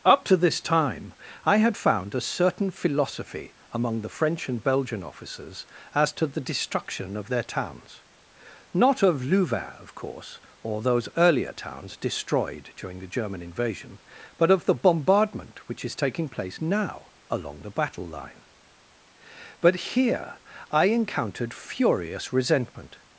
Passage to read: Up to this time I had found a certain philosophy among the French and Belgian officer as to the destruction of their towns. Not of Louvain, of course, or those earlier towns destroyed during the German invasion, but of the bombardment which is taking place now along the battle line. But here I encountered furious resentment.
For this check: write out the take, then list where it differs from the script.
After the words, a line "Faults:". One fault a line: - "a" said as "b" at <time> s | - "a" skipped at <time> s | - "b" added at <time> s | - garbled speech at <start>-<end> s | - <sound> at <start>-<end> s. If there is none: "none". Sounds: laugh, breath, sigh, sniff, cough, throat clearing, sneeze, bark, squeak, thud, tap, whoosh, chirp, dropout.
Up to this time I had found a certain philosophy among the French and Belgian officers as to the destruction of their towns. Not of Louvain, of course, or those earlier towns destroyed during the German invasion, but of the bombardment which is taking place now along the battle line. But here I encountered furious resentment.
Faults:
- "officer" said as "officers" at 5.0 s